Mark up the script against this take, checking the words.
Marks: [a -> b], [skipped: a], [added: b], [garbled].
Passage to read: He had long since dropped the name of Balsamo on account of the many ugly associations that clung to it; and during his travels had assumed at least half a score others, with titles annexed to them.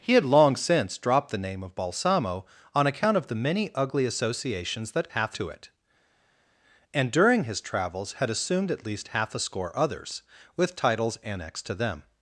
He had long since dropped the name of Balsamo on account of the many ugly associations that [clung -> half] to it; and during his travels had assumed at least half a score others, with titles annexed to them.